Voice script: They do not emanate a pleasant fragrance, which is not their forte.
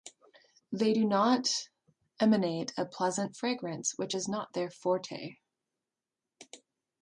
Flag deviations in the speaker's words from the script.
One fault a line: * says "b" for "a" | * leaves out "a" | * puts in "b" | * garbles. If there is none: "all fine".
all fine